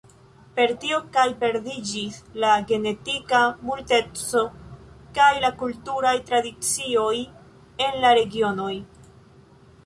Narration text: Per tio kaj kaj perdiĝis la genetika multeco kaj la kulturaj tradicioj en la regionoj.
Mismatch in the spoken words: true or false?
true